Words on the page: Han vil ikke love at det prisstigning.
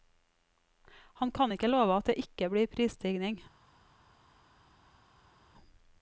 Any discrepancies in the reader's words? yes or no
yes